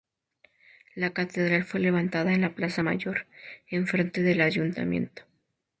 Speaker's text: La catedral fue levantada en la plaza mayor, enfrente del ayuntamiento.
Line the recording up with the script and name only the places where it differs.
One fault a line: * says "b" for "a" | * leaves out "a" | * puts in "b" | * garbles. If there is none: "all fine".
all fine